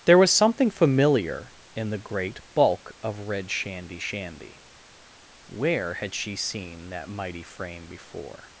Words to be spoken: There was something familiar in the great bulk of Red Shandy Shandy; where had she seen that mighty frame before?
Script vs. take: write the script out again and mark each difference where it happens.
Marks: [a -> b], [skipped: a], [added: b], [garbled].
There was something familiar in the great bulk of Red Shandy Shandy; where had she seen that mighty frame before?